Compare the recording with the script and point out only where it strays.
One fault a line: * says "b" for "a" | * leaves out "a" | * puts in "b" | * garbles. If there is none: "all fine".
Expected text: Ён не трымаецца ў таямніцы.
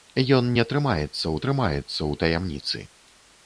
* puts in "трымаецца ў"